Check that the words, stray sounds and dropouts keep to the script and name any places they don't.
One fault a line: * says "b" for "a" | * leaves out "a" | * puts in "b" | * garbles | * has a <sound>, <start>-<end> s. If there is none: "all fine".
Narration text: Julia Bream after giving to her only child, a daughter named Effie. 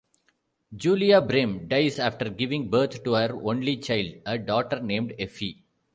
* puts in "dies"
* puts in "birth"